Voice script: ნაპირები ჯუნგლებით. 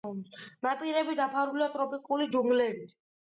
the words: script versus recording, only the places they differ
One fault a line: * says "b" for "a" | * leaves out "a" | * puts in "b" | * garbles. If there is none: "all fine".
* puts in "დაფარულია ტროპიკული"